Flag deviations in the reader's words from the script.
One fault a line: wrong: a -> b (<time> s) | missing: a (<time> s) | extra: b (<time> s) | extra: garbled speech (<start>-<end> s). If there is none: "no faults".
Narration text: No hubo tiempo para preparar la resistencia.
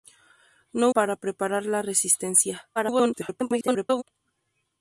missing: hubo tiempo (0.9 s)
extra: garbled speech (2.8-4.0 s)